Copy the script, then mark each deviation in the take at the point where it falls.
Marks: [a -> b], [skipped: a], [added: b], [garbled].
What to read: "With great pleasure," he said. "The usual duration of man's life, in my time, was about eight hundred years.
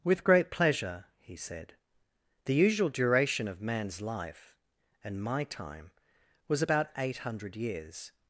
"With great pleasure," he said. "The usual duration of man's life, [in -> and] my time, was about eight hundred years.